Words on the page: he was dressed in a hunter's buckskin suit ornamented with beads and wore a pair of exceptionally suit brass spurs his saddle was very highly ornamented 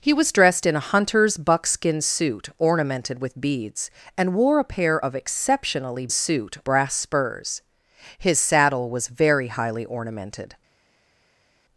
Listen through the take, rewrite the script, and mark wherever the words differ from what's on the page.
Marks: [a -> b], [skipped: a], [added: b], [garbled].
he was dressed in a hunter's buckskin suit ornamented with beads and wore a pair of exceptionally suit brass spurs his saddle was very highly ornamented